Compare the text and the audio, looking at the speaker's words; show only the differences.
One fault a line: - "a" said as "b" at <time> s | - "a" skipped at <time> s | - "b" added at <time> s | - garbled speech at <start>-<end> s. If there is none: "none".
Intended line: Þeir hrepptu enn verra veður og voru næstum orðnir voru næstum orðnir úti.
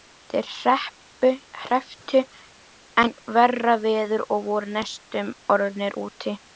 - "voru næstum orðnir" skipped at 6.0 s